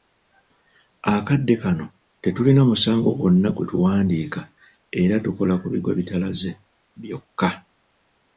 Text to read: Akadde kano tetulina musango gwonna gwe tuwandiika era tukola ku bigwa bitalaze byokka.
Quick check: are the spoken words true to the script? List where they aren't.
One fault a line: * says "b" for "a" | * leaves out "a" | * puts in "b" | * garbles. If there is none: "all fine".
all fine